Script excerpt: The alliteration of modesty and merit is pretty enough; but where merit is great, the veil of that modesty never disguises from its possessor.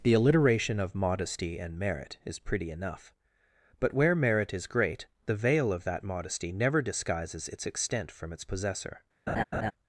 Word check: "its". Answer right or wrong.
right